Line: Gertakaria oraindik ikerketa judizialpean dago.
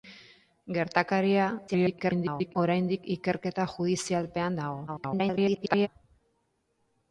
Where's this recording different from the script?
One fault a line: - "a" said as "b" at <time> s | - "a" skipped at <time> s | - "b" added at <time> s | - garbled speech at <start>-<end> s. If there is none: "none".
- garbled speech at 1.7-2.6 s
- garbled speech at 4.9-5.9 s